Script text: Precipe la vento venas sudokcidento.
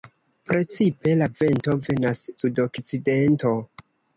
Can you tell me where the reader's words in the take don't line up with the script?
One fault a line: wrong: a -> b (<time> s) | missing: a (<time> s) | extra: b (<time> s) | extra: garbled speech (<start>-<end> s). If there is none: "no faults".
no faults